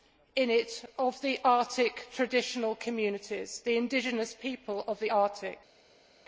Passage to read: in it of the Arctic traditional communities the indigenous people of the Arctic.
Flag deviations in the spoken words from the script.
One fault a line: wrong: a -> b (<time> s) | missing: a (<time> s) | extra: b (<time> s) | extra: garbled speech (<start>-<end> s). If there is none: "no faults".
no faults